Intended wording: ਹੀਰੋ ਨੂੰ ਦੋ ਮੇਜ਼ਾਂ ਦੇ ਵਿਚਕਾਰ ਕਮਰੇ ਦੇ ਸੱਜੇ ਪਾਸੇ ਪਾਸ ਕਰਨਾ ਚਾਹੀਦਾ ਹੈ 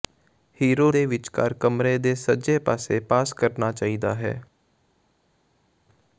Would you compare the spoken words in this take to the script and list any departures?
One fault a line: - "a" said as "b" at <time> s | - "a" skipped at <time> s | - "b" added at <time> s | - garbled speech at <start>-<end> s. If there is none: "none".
- "ਨੂੰ ਦੋ ਮੇਜ਼ਾਂ" skipped at 0.9 s